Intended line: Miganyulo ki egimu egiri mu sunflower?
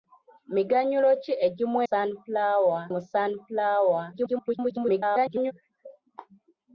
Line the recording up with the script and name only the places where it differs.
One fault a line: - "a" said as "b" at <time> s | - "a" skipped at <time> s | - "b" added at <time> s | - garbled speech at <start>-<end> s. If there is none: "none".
- "egiri" said as "sunflower" at 1.9 s
- garbled speech at 4.1-5.5 s